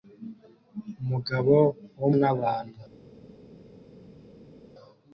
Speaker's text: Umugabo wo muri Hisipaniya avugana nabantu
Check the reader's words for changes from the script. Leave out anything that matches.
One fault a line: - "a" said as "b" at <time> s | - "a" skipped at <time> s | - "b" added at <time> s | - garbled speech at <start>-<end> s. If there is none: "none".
- "muri Hisipaniya avugana" skipped at 2.1 s